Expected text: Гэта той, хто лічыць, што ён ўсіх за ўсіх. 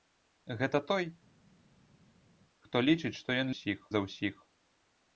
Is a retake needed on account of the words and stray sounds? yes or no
no